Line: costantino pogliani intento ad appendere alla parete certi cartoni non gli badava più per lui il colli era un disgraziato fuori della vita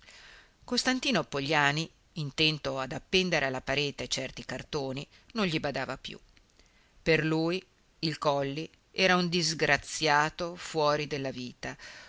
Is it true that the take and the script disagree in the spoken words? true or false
false